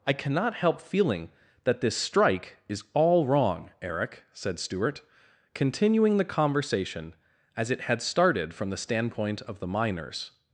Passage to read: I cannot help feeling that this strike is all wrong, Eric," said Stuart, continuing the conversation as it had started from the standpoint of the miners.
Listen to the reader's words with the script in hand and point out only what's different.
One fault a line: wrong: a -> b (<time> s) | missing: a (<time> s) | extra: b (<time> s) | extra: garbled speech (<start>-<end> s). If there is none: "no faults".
no faults